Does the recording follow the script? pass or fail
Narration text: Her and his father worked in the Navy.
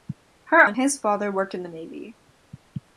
pass